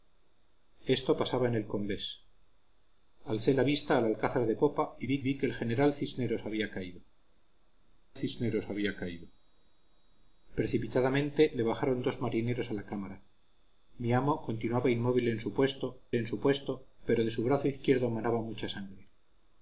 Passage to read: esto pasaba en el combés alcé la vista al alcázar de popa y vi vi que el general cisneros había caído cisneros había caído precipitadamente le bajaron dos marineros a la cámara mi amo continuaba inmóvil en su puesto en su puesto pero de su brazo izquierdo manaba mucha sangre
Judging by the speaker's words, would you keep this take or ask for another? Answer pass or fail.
pass